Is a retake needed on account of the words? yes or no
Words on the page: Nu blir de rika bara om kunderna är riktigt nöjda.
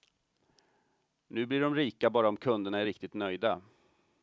no